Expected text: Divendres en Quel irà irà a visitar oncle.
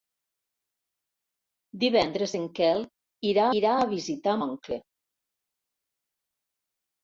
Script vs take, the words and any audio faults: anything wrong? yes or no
no